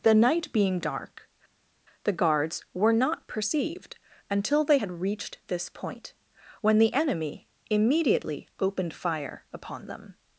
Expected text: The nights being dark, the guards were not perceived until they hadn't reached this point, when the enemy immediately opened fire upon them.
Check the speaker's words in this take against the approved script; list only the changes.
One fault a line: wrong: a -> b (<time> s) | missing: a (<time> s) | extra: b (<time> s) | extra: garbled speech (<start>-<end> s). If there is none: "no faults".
wrong: nights -> night (0.1 s)
wrong: hadn't -> had (4.7 s)